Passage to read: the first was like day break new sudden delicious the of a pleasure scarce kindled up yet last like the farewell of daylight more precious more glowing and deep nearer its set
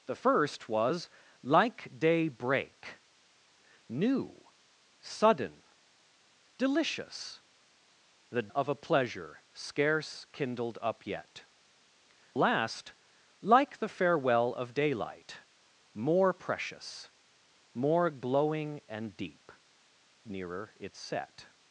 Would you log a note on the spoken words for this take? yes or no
no